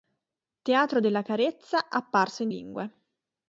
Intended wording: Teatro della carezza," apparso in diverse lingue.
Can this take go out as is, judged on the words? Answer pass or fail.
fail